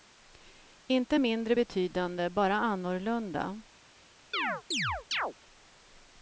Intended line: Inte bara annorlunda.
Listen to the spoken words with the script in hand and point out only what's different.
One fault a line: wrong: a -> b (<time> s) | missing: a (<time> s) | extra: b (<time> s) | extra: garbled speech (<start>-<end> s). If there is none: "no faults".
extra: mindre betydande (1.2 s)